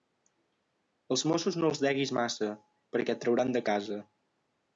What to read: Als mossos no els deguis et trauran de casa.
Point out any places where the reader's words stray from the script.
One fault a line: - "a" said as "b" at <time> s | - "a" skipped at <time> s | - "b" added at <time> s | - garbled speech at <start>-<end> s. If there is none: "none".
- "massa perquè" added at 2.2 s